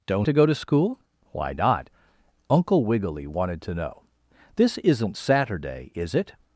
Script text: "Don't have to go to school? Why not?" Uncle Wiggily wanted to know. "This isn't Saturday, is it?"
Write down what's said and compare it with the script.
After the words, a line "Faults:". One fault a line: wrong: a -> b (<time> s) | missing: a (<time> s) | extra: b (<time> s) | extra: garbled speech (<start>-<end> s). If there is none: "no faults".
"Don't to go to school? Why not?" Uncle Wiggily wanted to know. "This isn't Saturday, is it?"
Faults:
missing: have (0.3 s)